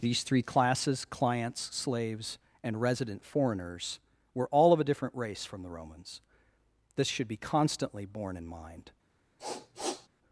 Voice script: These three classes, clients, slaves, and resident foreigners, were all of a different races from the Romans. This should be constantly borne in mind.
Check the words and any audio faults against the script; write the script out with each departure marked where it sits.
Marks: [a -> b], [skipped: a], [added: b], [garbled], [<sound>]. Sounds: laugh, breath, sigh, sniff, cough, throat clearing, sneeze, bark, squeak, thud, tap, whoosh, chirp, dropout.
These three classes, clients, slaves, and resident foreigners, were all of a different [races -> race] from the Romans. This should be constantly borne in mind. [sniff]